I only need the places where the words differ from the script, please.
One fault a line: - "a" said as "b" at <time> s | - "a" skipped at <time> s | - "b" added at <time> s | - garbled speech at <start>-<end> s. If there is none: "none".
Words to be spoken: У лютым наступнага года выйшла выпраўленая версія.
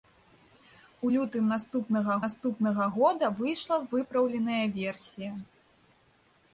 - "наступнага" added at 2.2 s